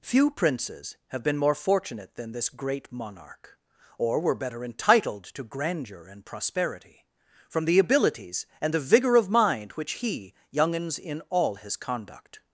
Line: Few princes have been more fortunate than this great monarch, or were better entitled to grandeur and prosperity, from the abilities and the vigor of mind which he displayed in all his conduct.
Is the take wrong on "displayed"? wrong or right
wrong